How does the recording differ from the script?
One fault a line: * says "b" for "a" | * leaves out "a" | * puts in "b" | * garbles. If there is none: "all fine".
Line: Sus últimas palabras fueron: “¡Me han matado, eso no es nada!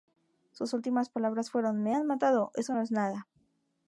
all fine